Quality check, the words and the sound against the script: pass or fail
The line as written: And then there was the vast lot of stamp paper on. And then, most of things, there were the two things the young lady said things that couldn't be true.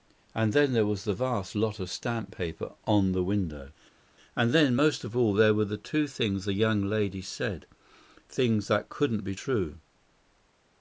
fail